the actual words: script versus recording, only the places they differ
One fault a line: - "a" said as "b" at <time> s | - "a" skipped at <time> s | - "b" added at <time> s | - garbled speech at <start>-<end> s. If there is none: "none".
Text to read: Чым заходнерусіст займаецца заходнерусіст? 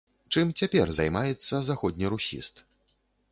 - "заходнерусіст" said as "цяпер" at 0.6 s